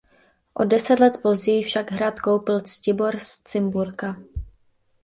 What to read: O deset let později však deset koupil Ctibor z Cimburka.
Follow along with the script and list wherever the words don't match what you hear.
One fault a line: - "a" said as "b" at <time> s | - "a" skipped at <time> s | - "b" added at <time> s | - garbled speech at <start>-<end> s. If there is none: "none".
- "deset" said as "hrad" at 1.9 s